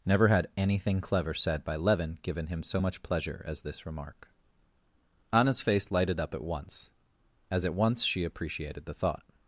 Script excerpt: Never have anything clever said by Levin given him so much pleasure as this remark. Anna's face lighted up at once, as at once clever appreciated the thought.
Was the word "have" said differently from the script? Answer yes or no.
yes